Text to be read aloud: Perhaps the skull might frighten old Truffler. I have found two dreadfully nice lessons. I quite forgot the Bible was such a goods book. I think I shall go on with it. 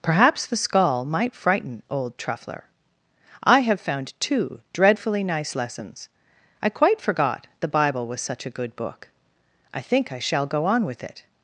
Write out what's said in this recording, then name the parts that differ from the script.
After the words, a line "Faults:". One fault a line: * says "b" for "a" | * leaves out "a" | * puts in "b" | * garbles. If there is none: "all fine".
Perhaps the skull might frighten old Truffler. I have found two dreadfully nice lessons. I quite forgot the Bible was such a good book. I think I shall go on with it.
Faults:
* says "good" for "goods"